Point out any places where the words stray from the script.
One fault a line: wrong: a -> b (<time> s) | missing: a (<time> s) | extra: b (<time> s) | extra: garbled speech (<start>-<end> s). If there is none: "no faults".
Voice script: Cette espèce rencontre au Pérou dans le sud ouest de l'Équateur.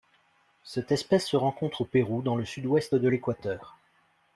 extra: se (1.3 s)